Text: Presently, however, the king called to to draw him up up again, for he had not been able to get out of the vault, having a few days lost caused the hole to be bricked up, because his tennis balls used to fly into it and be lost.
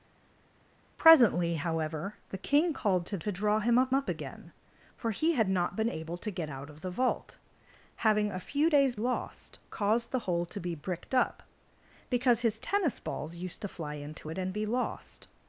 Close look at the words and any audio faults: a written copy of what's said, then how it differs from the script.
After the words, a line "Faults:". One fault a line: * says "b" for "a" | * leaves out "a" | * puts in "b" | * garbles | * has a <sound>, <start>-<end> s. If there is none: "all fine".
Presently, however, the king called to to draw him up up again, for he had not been able to get out of the vault, having a few days lost caused the hole to be bricked up, because his tennis balls used to fly into it and be lost.
Faults:
all fine